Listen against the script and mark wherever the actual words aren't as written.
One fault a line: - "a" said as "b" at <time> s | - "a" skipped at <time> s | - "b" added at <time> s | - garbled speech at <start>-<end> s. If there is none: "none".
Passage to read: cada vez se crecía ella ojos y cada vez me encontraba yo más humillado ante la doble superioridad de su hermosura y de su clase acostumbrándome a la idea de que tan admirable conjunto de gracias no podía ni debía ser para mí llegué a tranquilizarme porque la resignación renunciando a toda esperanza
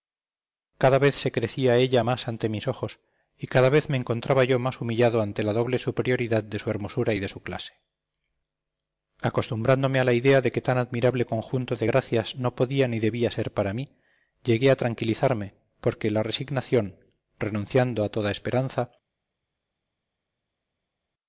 - "más ante mis" added at 2.0 s